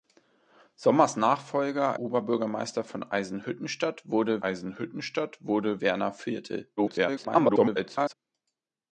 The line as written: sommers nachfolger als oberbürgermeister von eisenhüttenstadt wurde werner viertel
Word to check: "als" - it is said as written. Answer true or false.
false